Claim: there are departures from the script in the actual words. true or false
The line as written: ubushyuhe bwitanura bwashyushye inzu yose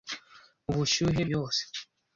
true